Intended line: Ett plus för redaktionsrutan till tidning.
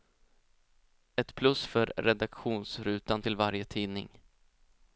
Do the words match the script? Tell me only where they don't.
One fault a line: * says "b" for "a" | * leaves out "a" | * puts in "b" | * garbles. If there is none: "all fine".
* puts in "varje"